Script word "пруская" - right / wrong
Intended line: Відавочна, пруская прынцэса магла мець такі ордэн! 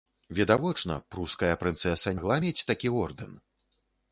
right